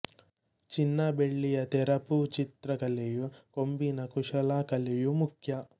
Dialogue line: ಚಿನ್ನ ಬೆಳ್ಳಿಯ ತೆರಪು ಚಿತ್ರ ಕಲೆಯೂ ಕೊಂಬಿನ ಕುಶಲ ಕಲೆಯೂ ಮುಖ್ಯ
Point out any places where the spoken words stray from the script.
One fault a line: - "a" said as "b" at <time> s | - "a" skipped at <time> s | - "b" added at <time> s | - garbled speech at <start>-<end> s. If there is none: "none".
none